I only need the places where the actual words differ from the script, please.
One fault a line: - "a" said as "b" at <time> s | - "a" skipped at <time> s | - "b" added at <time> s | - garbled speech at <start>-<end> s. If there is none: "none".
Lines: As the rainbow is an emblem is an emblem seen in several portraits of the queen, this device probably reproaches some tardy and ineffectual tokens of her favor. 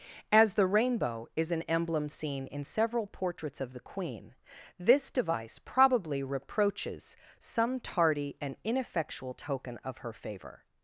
- "is an emblem" skipped at 2.1 s
- "tokens" said as "token" at 9.3 s